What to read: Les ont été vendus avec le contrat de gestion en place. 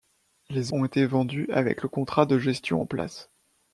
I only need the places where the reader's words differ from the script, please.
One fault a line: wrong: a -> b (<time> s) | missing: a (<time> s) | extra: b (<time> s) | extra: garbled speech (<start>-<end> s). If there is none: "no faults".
no faults